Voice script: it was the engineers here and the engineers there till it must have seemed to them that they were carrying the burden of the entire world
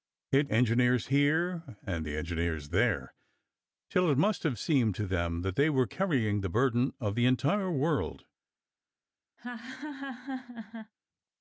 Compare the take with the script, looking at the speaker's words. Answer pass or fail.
fail